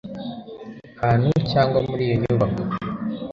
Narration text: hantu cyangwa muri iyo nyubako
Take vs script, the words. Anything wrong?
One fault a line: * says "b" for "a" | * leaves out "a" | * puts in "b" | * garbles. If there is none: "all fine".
all fine